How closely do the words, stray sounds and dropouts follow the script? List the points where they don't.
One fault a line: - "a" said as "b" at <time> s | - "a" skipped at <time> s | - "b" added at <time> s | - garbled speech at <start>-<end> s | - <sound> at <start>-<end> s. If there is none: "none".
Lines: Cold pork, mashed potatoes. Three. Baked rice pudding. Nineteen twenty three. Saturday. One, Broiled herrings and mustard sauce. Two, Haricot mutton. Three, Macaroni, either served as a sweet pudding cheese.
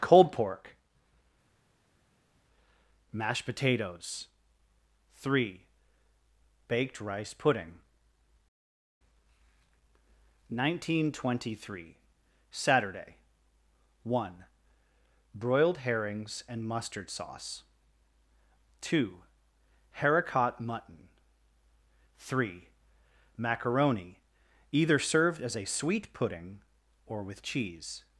- "or with" added at 27.1 s